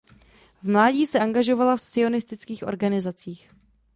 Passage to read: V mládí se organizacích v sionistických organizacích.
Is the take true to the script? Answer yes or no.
no